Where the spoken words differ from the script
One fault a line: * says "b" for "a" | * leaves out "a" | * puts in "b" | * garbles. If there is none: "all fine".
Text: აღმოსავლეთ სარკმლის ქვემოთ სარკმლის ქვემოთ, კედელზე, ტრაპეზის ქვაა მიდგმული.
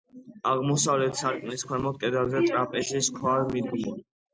* leaves out "სარკმლის ქვემოთ"